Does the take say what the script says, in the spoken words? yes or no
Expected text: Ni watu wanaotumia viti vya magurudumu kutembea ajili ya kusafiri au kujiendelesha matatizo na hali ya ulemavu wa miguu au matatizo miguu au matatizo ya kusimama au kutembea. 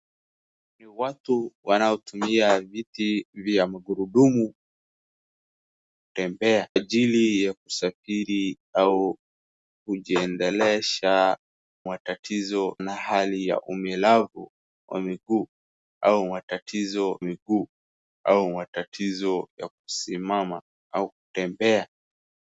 yes